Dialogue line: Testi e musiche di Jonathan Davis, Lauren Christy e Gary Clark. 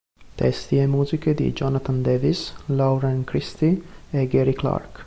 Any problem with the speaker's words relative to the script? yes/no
no